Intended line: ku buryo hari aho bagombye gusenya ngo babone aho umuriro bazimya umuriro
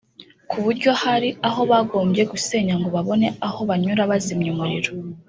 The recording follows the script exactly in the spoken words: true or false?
false